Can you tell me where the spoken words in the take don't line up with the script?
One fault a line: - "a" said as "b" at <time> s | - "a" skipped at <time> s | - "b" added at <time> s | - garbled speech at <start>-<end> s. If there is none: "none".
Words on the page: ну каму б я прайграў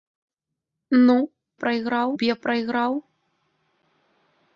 - "каму" said as "прайграў" at 1.6 s